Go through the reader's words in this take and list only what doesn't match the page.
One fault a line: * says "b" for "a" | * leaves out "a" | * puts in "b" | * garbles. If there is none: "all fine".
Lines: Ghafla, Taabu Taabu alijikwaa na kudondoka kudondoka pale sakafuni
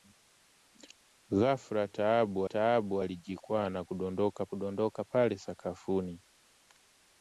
all fine